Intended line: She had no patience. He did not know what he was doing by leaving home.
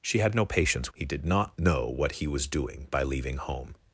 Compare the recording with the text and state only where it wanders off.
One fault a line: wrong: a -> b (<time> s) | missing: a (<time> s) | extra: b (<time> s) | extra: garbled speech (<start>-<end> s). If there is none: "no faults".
no faults